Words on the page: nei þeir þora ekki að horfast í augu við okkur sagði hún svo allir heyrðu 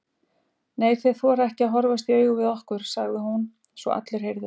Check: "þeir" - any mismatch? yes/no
no